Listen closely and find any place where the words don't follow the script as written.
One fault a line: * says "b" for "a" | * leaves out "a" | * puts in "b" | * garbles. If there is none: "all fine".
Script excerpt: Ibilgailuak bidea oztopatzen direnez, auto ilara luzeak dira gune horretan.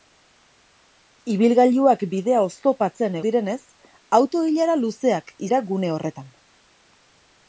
all fine